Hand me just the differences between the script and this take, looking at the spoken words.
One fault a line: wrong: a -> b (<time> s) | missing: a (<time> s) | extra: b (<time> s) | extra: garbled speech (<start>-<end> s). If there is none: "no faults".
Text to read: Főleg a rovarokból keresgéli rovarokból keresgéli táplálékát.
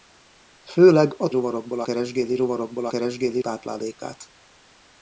no faults